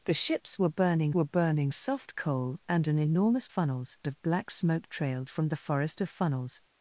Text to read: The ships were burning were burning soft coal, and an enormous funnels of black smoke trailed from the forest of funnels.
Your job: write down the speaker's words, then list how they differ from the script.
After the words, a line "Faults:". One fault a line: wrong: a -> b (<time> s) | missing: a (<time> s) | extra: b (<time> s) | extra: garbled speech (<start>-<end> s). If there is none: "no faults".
The ships were burning were burning soft coal, and an enormous funnels of black smoke trailed from the forest of funnels.
Faults:
no faults